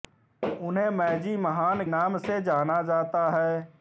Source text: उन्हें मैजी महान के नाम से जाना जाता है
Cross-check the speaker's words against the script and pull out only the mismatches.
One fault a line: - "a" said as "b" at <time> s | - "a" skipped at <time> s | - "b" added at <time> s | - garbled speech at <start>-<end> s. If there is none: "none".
- "के" skipped at 1.8 s